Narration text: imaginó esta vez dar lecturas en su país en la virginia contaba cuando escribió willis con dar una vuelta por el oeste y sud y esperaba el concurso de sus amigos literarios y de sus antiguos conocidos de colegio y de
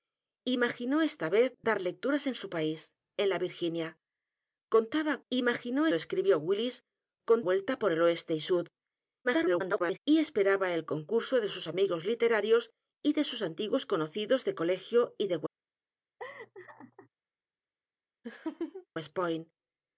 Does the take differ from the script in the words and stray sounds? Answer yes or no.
yes